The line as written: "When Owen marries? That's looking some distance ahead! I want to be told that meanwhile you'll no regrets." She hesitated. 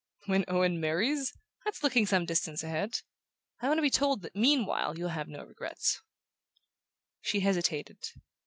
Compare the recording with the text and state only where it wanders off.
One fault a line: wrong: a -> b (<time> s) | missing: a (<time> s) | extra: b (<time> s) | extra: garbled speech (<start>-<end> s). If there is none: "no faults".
extra: have (5.1 s)